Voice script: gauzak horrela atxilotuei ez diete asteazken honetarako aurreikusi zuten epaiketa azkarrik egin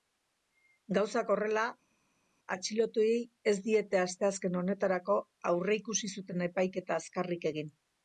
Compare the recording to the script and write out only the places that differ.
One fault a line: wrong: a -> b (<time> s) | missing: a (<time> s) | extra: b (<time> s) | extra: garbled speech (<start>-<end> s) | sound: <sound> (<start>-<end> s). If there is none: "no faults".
no faults